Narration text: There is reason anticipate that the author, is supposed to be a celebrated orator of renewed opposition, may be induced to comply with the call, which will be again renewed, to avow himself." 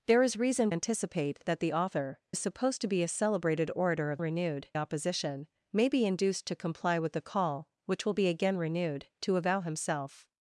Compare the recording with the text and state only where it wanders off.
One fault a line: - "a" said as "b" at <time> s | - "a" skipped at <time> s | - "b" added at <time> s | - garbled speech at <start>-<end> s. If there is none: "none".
none